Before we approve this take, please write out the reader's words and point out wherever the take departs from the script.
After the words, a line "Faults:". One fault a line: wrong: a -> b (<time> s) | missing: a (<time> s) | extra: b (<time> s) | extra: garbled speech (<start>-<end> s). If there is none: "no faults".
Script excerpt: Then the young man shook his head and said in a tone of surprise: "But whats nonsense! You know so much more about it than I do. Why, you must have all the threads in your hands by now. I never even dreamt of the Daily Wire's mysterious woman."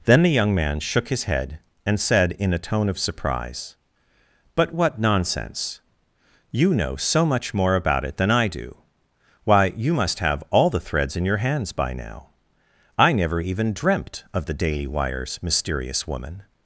Then the young man shook his head and said in a tone of surprise: "But what nonsense! You know so much more about it than I do. Why, you must have all the threads in your hands by now. I never even dreamt of the Daily Wire's mysterious woman."
Faults:
wrong: whats -> what (4.7 s)